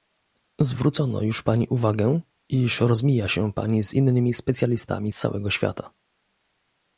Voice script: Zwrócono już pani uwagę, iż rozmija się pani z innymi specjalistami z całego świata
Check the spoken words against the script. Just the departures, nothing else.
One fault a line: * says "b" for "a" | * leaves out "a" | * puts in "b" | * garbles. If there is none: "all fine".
all fine